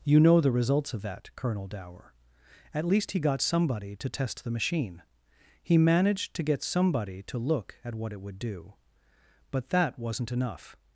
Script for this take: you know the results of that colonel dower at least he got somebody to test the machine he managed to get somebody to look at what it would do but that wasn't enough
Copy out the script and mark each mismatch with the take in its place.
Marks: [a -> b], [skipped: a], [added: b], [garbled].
you know the results of that colonel dower at least he got somebody to test the machine he managed to get somebody to look at what it would do but that wasn't enough